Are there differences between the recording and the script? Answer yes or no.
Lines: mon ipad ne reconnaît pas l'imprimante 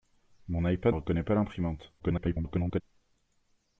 yes